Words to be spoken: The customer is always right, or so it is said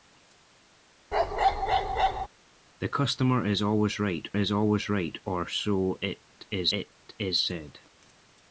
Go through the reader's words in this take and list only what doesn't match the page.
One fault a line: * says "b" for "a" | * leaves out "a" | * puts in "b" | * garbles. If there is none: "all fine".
* puts in "is always right"
* puts in "it is"